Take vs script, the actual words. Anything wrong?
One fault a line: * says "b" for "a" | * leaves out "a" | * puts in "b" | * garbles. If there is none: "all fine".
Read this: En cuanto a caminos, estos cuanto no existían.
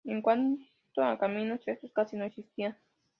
* says "casi" for "cuanto"